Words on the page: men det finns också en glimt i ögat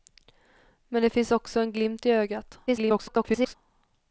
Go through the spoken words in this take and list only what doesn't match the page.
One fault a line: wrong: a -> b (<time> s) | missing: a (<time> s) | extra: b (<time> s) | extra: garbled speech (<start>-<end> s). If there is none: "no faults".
extra: garbled speech (2.7-3.5 s)